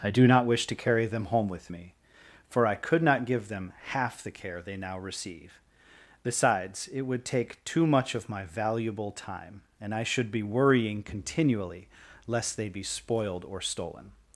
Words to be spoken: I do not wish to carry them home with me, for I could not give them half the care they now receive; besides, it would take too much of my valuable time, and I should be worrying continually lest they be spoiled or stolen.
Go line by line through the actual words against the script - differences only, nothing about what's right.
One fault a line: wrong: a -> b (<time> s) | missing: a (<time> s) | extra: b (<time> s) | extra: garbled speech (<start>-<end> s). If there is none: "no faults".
no faults